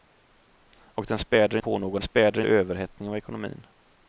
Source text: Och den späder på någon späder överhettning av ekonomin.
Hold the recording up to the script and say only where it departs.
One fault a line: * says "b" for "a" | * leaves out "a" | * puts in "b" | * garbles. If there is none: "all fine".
all fine